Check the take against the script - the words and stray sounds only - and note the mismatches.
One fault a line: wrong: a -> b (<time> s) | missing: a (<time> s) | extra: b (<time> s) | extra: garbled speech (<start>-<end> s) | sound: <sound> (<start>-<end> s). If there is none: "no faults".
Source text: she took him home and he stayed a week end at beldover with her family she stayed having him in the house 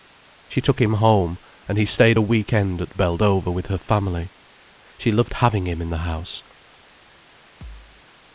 wrong: stayed -> loved (5.1 s)
sound: thud (7.6-8.0 s)